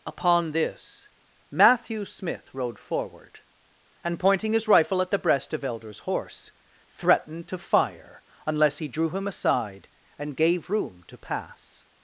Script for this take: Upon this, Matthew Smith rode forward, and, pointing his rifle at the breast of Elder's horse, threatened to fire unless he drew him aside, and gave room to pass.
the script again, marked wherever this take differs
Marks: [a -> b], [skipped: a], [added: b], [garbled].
Upon this, Matthew Smith rode forward, and, pointing his rifle at the breast of Elder's horse, threatened to fire unless he drew him aside, and gave room to pass.